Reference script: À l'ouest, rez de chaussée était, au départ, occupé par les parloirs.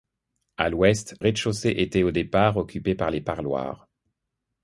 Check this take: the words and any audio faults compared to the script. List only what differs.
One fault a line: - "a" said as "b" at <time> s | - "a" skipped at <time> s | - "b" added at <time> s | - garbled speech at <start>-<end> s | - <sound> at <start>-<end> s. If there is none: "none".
none